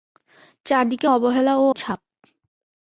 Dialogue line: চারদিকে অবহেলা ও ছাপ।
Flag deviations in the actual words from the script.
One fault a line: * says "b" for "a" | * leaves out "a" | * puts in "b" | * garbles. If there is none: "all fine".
all fine